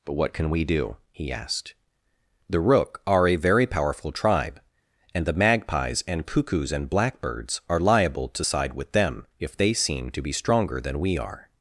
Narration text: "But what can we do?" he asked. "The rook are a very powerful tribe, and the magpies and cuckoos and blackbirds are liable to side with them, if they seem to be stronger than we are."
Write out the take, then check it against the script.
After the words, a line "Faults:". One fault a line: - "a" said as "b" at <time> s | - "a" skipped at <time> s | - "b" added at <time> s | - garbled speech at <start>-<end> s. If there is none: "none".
"But what can we do?" he asked. "The rook are a very powerful tribe, and the magpies and cuckoos and blackbirds are liable to side with them, if they seem to be stronger than we are."
Faults:
none